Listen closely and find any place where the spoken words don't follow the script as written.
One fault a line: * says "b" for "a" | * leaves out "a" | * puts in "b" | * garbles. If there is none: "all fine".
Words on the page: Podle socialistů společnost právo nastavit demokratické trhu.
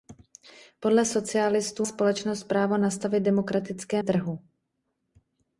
all fine